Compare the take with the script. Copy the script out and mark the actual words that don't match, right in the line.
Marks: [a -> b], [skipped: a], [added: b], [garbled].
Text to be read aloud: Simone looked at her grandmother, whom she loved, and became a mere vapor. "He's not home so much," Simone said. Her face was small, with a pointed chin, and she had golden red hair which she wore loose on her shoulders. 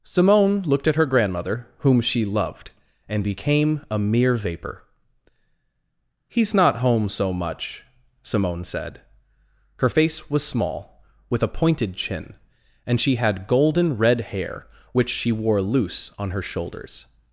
Simone looked at her grandmother, whom she loved, and became a mere vapor. "He's not home so much," Simone said. Her face was small, with a pointed chin, and she had golden red hair which she wore loose on her shoulders.